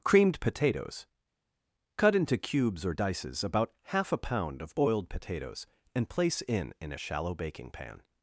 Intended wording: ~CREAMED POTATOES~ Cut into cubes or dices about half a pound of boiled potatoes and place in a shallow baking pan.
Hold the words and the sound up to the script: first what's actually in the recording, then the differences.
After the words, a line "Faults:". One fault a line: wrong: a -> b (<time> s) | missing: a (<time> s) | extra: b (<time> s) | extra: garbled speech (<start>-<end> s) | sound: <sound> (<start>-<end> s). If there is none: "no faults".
~CREAMED POTATOES~ Cut into cubes or dices about half a pound of boiled potatoes and place in in a shallow baking pan.
Faults:
extra: in (6.8 s)